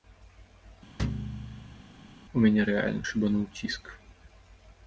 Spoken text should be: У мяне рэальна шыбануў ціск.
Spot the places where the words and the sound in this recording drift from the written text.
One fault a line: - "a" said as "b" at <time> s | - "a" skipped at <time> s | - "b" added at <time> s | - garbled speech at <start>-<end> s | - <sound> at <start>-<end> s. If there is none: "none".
- thud at 1.0-1.8 s